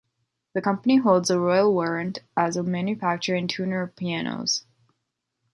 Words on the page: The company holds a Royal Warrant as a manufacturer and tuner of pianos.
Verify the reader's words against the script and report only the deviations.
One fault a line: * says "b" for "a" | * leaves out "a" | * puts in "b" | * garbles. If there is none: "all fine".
all fine